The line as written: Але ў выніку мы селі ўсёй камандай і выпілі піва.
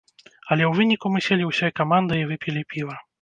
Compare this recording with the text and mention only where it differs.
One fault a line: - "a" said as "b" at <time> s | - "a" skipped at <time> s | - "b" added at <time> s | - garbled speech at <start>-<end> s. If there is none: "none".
none